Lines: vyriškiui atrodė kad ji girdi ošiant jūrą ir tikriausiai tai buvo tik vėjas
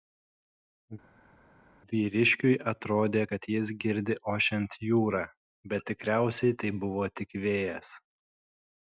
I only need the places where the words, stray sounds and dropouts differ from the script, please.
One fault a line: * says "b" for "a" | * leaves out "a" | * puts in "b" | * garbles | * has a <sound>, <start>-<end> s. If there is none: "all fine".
* says "jis" for "ji"
* says "bet" for "ir"